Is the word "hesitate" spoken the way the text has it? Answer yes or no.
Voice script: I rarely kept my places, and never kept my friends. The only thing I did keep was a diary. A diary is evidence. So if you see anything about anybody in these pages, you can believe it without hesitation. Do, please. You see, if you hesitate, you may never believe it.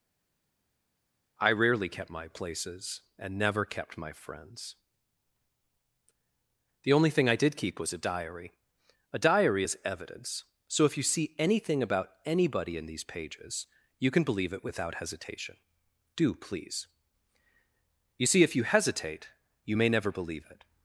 yes